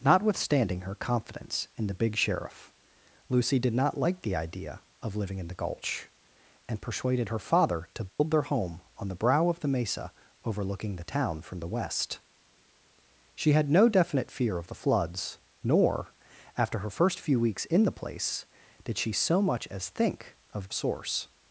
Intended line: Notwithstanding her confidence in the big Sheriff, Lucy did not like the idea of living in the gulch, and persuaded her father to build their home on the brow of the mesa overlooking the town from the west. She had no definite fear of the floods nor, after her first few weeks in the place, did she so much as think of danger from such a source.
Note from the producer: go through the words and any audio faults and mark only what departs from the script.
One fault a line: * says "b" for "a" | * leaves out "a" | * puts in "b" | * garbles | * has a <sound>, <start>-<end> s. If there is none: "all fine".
* has a dropout, 8.1-8.2 s
* leaves out "danger from such"